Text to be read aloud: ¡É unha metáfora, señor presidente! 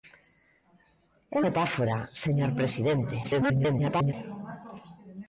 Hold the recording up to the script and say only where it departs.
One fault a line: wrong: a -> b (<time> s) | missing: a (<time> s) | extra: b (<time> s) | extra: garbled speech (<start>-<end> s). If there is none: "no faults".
missing: unha (1.4 s)
extra: garbled speech (3.2-4.1 s)